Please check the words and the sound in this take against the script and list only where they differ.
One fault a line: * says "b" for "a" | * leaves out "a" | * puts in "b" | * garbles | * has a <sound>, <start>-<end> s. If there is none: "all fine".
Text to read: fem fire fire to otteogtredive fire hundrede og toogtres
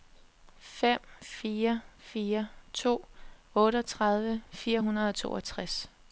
all fine